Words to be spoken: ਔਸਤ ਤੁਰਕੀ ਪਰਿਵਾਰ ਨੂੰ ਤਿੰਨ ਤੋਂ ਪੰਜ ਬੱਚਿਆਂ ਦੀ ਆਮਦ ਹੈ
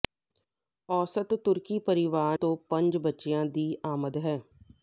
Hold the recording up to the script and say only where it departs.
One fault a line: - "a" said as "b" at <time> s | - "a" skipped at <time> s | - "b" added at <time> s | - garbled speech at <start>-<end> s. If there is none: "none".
- "ਨੂੰ ਤਿੰਨ" skipped at 2.4 s